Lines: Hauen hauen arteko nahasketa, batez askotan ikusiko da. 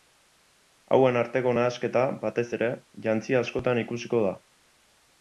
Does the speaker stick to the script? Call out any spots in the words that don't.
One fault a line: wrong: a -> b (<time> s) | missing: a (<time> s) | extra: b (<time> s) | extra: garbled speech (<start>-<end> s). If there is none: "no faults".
missing: hauen (1.2 s)
extra: ere jantzi (2.6 s)